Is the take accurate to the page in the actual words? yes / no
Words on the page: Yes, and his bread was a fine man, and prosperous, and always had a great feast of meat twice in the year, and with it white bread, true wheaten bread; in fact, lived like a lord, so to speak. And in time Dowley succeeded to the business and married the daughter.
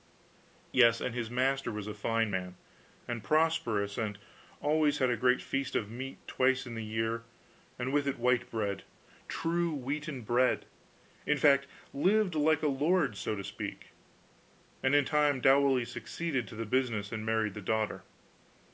no